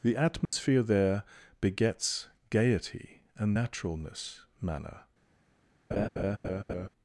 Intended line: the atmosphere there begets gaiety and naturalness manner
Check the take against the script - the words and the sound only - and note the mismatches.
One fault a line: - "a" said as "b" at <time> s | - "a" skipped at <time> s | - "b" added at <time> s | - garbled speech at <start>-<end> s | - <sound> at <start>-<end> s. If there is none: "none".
- dropout at 0.5-0.5 s
- laugh at 5.9-6.9 s